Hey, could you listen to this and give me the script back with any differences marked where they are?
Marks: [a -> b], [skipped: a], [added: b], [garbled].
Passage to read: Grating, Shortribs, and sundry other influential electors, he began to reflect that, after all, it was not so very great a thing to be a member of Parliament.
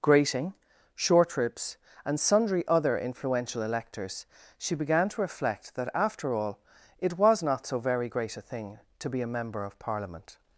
Grating, Shortribs, and sundry other influential electors, [he -> she] began to reflect that, after all, it was not so very great a thing to be a member of Parliament.